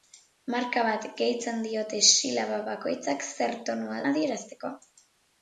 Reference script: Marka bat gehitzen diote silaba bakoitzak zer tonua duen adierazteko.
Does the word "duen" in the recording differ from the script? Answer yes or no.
yes